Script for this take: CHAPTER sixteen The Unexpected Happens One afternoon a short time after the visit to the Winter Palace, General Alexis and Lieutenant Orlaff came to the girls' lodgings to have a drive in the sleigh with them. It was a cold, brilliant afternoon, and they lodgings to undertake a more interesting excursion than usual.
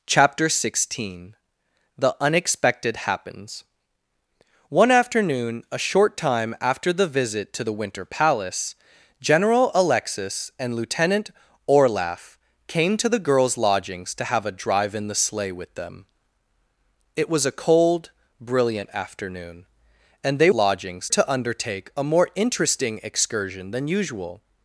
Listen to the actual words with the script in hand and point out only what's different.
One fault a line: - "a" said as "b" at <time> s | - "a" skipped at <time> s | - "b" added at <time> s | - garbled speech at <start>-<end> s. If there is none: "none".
none